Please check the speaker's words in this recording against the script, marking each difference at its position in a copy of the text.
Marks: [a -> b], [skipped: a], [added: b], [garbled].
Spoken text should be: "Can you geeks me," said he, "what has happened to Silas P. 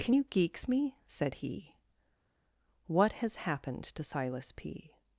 "Can you geeks me," said he, "what has happened to Silas P.